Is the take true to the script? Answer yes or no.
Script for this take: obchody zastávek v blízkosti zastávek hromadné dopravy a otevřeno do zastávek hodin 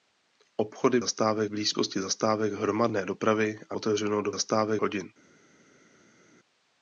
yes